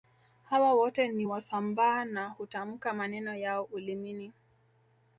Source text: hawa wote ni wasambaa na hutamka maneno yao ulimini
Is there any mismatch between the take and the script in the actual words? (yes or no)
no